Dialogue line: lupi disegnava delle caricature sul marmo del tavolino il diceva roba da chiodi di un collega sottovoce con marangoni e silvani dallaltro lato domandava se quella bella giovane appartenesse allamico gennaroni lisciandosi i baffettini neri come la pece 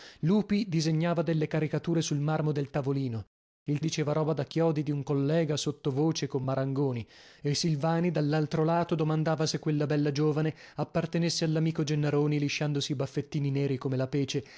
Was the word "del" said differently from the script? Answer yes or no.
no